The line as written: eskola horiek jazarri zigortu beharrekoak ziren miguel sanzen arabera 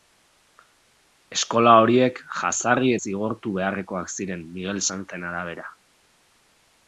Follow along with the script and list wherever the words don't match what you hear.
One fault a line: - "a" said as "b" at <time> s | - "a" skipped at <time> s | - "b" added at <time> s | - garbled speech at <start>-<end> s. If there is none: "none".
none